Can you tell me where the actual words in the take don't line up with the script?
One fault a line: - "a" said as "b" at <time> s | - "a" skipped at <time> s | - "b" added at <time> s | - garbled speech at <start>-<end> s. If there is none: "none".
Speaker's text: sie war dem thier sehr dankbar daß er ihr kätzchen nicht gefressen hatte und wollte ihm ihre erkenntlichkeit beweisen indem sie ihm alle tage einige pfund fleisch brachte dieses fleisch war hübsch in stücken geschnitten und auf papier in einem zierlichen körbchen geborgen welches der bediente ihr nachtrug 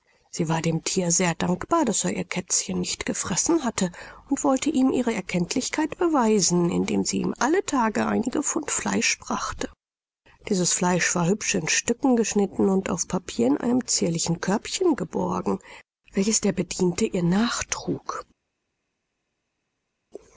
none